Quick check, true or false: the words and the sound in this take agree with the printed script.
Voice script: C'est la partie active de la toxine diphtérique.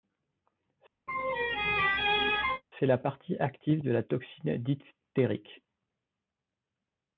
false